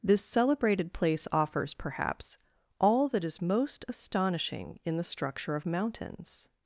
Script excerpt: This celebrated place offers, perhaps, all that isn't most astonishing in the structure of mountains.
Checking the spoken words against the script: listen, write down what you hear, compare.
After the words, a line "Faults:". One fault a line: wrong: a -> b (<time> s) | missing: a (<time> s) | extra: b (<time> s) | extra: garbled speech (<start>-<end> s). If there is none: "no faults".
This celebrated place offers, perhaps, all that is most astonishing in the structure of mountains.
Faults:
wrong: isn't -> is (3.2 s)